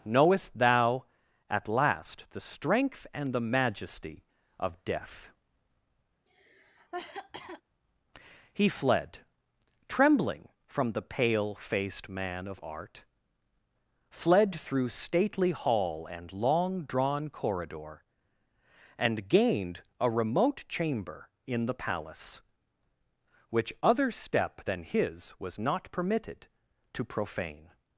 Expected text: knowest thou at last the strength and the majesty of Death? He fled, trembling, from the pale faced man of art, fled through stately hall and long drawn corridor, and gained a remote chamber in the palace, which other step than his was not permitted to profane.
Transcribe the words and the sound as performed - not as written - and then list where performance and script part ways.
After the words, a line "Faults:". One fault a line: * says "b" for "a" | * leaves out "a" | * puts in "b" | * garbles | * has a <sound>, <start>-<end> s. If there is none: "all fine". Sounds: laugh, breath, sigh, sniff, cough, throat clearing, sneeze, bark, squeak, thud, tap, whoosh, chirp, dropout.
knowest thou at last the strength and the majesty of Death? He fled, trembling, from the pale faced man of art, fled through stately hall and long drawn corridor, and gained a remote chamber in the palace, which other step than his was not permitted to profane.
Faults:
* has a cough, 6.3-7.6 s